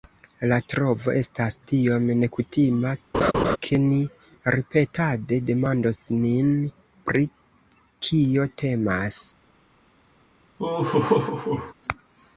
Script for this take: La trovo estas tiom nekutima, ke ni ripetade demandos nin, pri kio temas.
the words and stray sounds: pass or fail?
fail